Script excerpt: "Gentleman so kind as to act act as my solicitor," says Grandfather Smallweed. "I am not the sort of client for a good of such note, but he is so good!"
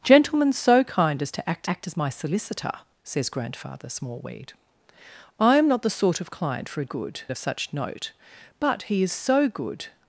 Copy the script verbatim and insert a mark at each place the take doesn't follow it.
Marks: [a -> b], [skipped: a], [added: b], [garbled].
"Gentleman so kind as to act act as my solicitor," says Grandfather Smallweed. "I am not the sort of client for a good of such note, but he is so good!"